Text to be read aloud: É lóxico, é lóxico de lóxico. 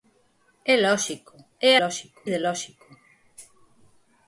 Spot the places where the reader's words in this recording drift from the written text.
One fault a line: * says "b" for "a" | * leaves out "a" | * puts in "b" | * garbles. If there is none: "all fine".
all fine